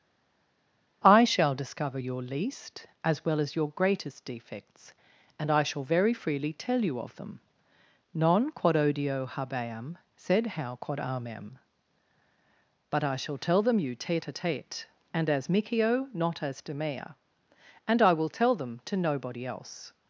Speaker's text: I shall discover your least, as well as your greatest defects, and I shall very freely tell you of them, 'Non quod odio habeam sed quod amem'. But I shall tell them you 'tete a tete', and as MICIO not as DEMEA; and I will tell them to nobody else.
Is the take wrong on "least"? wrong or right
right